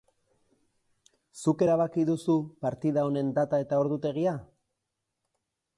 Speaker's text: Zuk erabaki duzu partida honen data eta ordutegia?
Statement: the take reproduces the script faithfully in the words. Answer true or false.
true